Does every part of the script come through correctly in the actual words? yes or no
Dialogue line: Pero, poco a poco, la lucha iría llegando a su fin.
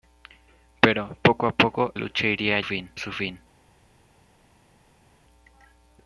no